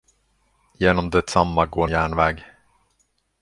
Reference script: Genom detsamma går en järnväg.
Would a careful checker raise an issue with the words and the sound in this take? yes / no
no